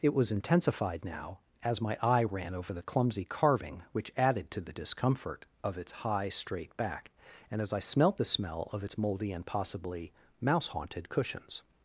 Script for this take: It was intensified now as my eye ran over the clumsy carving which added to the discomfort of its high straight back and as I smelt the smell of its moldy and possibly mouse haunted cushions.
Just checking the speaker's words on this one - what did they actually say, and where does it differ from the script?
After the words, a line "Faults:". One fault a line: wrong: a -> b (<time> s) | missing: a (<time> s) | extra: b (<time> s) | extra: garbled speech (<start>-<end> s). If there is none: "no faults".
It was intensified now as my eye ran over the clumsy carving which added to the discomfort of its high straight back and as I smelt the smell of its moldy and possibly mouse haunted cushions.
Faults:
no faults